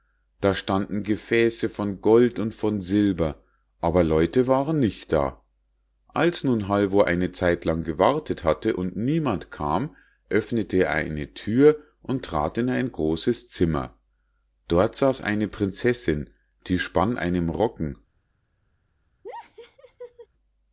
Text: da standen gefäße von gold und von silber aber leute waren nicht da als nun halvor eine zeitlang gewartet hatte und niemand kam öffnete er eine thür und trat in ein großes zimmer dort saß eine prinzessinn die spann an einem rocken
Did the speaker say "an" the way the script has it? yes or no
no